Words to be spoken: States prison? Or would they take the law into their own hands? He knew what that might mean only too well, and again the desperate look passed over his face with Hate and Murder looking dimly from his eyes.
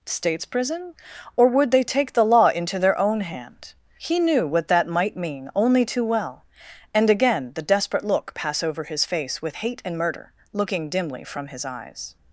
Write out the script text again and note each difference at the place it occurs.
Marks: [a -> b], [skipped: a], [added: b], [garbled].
States prison? Or would they take the law into their own [hands? -> hand] He knew what that might mean only too well, and again the desperate look [passed -> pass] over his face with Hate and Murder looking dimly from his eyes.